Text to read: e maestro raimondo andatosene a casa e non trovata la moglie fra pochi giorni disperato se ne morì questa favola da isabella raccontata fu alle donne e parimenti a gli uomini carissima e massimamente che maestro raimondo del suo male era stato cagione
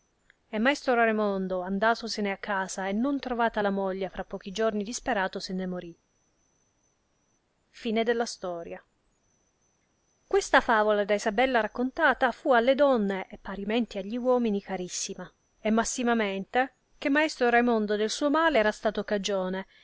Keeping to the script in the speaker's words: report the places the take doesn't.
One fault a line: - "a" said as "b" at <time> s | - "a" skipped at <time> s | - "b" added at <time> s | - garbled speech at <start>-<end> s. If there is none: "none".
none